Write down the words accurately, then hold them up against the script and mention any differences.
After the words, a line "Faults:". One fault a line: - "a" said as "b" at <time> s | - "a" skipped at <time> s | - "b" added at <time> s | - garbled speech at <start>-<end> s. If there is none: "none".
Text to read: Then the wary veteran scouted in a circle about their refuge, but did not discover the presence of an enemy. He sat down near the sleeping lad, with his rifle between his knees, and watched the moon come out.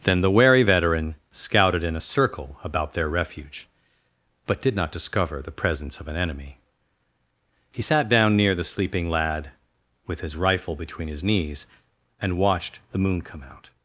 Then the wary veteran scouted in a circle about their refuge, but did not discover the presence of an enemy. He sat down near the sleeping lad, with his rifle between his knees, and watched the moon come out.
Faults:
none